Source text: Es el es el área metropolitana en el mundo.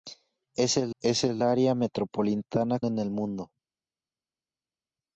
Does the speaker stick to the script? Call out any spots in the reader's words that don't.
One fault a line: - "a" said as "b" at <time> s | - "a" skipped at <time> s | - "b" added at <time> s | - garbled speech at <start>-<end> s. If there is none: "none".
none